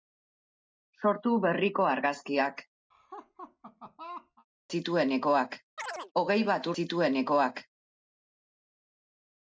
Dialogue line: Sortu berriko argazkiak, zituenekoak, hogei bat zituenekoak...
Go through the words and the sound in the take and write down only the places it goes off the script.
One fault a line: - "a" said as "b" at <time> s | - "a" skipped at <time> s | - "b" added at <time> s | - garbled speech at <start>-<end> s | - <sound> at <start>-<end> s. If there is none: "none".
- laugh at 2.9-4.5 s
- chirp at 5.8-6.1 s